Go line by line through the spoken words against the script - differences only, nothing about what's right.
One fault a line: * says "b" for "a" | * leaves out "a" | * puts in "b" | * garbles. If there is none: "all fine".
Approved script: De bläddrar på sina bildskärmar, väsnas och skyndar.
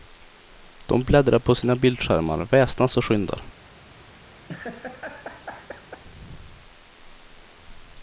all fine